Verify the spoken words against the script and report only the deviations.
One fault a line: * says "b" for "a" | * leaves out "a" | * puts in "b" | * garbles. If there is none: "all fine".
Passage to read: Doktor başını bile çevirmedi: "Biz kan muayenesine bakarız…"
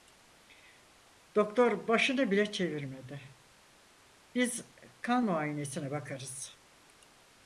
all fine